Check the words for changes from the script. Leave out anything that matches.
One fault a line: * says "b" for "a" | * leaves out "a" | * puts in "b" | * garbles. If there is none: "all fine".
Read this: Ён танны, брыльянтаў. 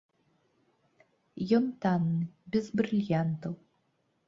* puts in "без"